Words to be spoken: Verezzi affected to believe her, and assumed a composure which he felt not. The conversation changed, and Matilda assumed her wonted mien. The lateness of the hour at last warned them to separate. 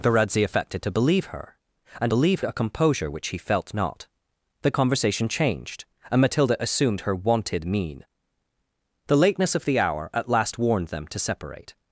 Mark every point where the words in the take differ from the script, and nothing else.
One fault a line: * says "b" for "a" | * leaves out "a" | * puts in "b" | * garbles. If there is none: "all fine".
* says "believe" for "assumed"